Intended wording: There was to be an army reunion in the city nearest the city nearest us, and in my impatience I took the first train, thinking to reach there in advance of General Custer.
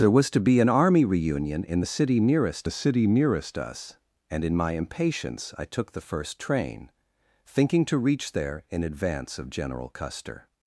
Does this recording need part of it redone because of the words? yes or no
no